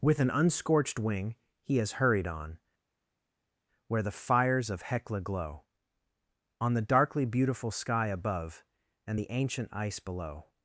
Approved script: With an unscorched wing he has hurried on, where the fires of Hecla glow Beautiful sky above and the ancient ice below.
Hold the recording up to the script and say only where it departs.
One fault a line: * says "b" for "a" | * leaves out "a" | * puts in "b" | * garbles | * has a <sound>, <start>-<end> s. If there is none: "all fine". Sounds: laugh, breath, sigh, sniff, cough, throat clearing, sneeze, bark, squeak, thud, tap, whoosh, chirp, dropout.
* puts in "On the darkly"